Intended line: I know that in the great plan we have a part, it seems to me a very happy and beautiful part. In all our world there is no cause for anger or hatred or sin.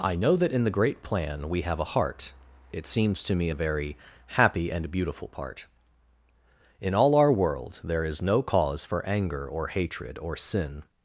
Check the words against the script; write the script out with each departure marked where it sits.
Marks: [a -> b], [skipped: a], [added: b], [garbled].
I know that in the great plan we have a [part, -> heart] it seems to me a very happy and beautiful part. In all our world there is no cause for anger or hatred or sin.